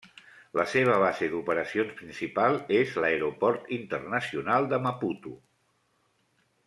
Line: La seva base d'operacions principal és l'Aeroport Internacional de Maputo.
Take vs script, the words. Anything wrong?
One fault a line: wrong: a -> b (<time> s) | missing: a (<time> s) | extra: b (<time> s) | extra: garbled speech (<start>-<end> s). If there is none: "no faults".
no faults